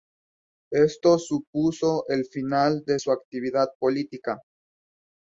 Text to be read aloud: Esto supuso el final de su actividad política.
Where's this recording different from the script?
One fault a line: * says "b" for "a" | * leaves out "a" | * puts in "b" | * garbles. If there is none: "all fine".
all fine